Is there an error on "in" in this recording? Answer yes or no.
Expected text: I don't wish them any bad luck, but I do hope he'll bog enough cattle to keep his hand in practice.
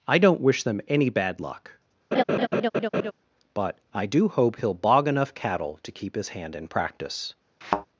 no